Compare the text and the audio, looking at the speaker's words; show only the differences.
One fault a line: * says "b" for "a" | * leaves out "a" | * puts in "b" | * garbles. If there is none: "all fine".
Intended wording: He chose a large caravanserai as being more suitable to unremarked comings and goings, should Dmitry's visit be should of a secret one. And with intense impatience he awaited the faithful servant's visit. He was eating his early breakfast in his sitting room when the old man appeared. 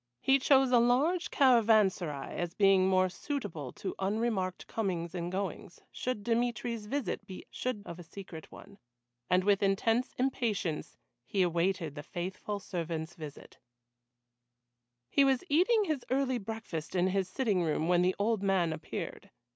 all fine